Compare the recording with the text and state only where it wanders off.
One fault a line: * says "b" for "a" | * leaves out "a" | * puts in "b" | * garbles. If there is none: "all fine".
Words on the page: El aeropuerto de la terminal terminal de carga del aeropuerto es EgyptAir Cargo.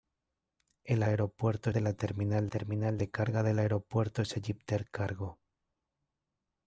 all fine